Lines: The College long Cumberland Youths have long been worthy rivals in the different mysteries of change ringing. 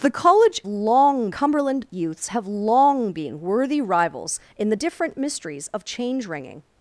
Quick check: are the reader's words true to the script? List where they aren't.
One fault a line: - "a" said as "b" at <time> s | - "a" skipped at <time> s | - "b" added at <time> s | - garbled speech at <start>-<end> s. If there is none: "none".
none